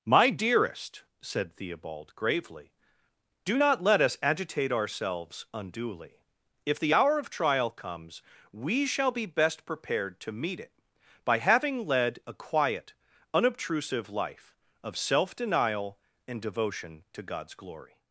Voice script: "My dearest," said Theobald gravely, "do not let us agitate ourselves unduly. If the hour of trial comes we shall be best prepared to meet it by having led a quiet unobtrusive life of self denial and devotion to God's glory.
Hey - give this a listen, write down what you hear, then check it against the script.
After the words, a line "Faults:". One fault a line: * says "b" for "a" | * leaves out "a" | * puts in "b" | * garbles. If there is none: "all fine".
"My dearest," said Theobald gravely, "do not let us agitate ourselves unduly. If the hour of trial comes we shall be best prepared to meet it by having led a quiet unobtrusive life of self denial and devotion to God's glory.
Faults:
all fine